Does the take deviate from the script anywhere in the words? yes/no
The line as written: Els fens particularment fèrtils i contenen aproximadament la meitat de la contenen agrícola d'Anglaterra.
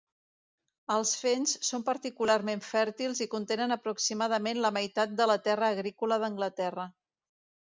yes